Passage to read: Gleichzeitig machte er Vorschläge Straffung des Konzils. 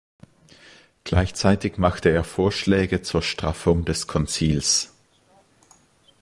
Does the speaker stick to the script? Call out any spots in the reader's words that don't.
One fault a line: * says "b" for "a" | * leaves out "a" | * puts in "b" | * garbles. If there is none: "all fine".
* puts in "zur"